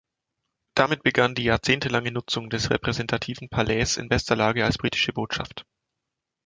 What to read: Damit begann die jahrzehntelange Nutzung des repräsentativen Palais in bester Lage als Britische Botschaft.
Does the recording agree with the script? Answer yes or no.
yes